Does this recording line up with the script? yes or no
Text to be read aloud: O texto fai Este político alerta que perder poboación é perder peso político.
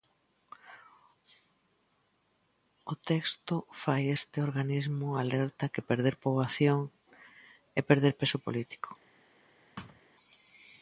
no